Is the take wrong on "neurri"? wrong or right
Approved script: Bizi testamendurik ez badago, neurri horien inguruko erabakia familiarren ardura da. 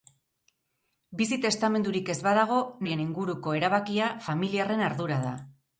wrong